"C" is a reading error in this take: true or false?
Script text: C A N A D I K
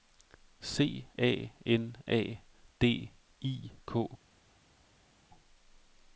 false